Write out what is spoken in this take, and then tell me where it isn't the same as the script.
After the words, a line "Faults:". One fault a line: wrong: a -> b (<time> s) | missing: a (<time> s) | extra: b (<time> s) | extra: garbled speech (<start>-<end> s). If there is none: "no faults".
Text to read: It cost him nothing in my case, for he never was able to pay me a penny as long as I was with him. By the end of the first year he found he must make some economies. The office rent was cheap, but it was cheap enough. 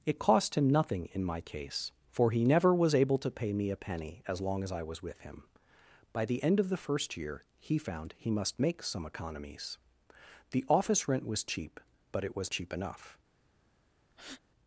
It cost him nothing in my case, for he never was able to pay me a penny as long as I was with him. By the end of the first year he found he must make some economies. The office rent was cheap, but it was cheap enough.
Faults:
no faults